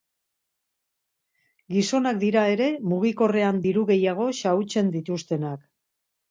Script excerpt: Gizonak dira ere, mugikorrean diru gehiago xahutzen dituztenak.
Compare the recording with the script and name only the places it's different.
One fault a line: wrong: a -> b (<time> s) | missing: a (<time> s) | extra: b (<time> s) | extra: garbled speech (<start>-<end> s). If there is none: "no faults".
no faults